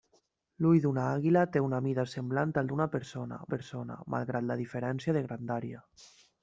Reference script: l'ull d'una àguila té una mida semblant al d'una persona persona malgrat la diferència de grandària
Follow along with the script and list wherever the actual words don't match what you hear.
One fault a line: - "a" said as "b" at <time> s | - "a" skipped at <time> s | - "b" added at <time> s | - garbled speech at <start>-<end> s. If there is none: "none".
none